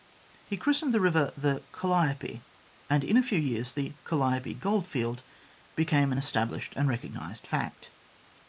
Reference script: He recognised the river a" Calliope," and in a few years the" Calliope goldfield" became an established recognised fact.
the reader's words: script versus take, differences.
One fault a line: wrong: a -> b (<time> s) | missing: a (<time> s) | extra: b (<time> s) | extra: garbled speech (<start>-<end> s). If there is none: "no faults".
wrong: recognised -> christened (0.6 s)
wrong: a -> the (1.4 s)
extra: and (6.8 s)